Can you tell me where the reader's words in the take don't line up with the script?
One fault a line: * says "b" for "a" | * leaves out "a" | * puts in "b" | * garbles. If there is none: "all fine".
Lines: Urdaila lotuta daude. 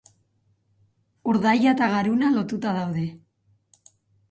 * puts in "eta garuna"